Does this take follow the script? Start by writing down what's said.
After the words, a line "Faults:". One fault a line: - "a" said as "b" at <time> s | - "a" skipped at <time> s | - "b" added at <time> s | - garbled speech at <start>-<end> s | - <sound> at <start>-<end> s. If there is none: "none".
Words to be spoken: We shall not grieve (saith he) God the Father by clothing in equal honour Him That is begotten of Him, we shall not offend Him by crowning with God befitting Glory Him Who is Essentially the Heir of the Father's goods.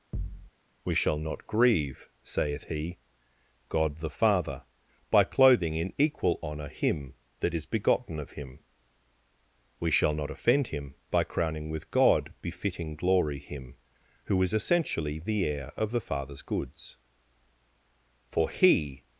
We shall not grieve (saith he) God the Father by clothing in equal honour Him That is begotten of Him, we shall not offend Him by crowning with God befitting Glory Him Who is Essentially the Heir of the Father's goods. For He
Faults:
- thud at 0.1-0.5 s
- "For He" added at 18.2 s